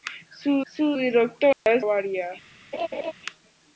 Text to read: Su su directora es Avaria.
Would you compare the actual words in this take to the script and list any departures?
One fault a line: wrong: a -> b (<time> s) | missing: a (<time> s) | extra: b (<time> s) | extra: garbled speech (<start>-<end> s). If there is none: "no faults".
no faults